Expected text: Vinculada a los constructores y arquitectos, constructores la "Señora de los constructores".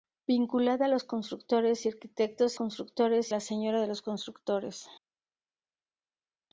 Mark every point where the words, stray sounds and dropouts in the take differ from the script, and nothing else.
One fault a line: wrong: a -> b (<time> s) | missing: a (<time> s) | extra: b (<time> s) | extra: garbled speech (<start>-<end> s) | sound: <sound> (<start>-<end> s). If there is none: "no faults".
no faults